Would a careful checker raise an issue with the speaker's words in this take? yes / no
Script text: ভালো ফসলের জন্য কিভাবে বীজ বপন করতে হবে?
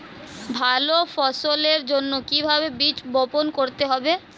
no